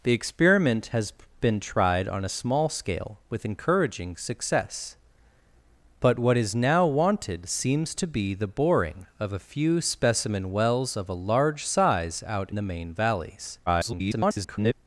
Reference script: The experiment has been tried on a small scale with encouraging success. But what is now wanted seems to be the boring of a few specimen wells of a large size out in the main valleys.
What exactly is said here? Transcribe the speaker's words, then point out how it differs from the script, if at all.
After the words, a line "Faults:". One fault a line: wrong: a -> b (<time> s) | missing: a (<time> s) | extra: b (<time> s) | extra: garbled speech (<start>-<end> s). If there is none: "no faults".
The experiment has been tried on a small scale with encouraging success. But what is now wanted seems to be the boring of a few specimen wells of a large size out the main valleys. [garbled]
Faults:
missing: in (12.5 s)
extra: garbled speech (13.7-14.7 s)